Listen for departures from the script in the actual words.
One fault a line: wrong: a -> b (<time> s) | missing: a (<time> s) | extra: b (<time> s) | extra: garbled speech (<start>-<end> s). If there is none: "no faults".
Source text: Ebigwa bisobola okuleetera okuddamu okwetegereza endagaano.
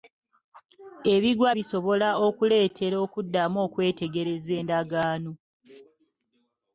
no faults